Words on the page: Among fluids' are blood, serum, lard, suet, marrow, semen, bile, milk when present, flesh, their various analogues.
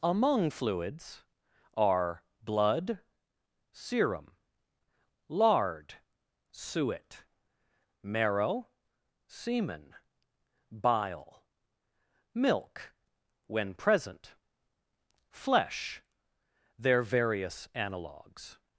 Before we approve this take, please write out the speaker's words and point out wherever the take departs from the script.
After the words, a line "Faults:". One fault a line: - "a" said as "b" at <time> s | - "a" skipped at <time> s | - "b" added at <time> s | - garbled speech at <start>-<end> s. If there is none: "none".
Among fluids' are blood, serum, lard, suet, marrow, semen, bile, milk when present, flesh, their various analogues.
Faults:
none